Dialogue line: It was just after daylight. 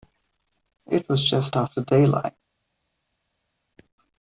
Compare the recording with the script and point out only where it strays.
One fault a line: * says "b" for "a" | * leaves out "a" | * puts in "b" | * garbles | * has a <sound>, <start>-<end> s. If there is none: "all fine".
all fine